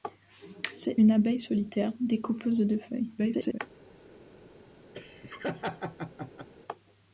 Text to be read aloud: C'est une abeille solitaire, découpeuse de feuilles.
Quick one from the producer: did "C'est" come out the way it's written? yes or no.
yes